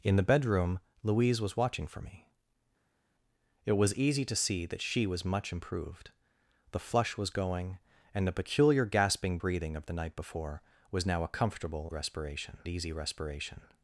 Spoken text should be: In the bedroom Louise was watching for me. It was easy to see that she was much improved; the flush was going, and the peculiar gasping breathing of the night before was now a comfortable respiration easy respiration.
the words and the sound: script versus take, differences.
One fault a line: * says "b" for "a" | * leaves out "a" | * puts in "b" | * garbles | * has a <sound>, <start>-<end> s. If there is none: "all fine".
all fine